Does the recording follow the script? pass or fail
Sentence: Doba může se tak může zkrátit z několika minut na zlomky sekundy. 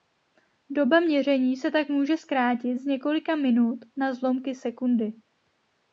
fail